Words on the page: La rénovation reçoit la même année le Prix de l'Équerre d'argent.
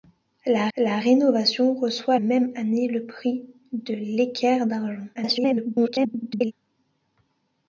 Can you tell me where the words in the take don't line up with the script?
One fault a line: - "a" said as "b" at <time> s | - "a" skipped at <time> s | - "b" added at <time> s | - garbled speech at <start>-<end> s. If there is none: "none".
- "la" added at 0.8 s
- "la" skipped at 2.2 s
- garbled speech at 5.1-6.5 s